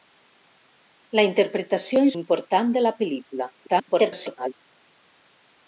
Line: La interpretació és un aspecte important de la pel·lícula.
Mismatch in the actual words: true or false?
true